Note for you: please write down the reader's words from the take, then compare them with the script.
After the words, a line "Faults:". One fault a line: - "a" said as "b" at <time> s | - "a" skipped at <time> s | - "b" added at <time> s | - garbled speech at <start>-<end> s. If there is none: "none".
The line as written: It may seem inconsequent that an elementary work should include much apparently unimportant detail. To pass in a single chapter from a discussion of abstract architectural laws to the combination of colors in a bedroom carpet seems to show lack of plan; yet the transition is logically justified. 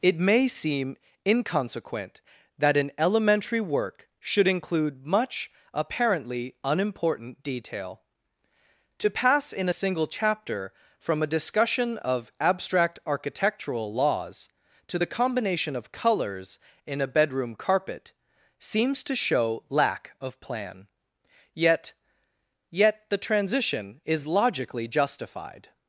It may seem inconsequent that an elementary work should include much apparently unimportant detail. To pass in a single chapter from a discussion of abstract architectural laws to the combination of colors in a bedroom carpet seems to show lack of plan; yet yet the transition is logically justified.
Faults:
- "yet" added at 22.7 s